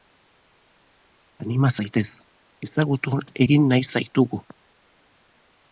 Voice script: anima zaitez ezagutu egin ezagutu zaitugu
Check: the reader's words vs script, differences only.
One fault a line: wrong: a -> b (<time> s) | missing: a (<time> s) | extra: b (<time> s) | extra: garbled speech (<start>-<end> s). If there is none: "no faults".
wrong: ezagutu -> nahi (3.7 s)